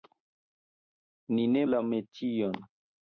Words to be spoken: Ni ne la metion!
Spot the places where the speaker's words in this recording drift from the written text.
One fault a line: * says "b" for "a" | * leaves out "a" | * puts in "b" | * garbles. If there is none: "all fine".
all fine